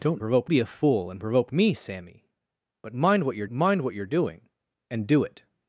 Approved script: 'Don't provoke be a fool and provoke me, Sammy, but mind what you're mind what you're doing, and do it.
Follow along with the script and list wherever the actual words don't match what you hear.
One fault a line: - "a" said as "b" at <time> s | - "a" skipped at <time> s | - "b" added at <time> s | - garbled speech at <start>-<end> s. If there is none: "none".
none